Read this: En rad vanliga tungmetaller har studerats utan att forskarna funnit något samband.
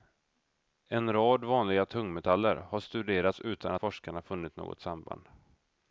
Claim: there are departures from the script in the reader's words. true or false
true